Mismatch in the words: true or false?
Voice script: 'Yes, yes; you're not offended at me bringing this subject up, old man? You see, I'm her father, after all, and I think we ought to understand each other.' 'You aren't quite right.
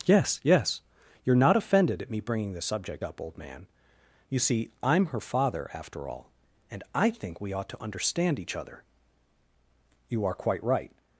true